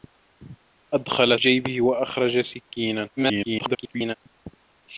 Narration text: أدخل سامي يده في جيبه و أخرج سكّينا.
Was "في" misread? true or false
true